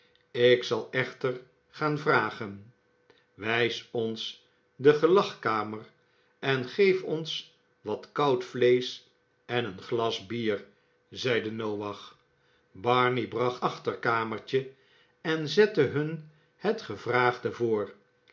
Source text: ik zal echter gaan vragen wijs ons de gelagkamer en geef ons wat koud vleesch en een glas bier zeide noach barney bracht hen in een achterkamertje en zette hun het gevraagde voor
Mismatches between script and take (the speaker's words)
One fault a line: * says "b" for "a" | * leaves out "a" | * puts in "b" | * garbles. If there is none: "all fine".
* leaves out "hen in een"